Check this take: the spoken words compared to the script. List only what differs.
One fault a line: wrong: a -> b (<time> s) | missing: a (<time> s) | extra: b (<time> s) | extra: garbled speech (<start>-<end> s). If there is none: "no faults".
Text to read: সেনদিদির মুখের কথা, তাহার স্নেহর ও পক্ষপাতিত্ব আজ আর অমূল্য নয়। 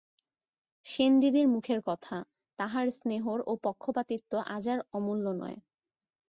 no faults